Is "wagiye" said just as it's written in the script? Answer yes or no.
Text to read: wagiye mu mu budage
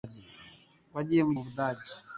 yes